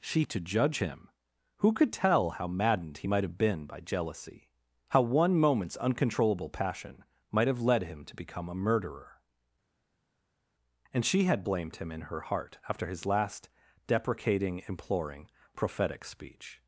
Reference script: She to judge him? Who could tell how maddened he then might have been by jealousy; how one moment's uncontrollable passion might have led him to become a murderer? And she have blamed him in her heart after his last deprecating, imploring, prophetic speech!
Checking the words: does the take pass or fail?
fail